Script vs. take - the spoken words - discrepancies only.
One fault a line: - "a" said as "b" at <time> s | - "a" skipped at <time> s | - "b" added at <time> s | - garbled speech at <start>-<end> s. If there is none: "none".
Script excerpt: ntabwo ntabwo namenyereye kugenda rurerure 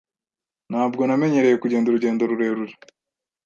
- "ntabwo" skipped at 1.0 s
- "urugendo" added at 1.9 s